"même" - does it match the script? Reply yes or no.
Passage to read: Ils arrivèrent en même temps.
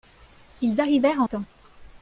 no